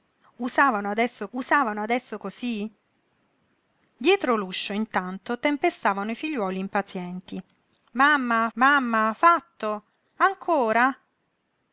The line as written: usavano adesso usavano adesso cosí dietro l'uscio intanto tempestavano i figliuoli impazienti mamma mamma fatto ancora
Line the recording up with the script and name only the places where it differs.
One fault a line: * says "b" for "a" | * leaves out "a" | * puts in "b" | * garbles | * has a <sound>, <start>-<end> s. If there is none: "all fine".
all fine